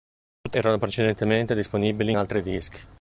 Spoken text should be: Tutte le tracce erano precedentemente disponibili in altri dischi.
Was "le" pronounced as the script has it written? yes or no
no